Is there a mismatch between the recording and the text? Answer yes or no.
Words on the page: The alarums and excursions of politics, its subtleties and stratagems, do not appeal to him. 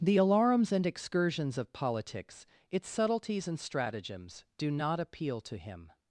no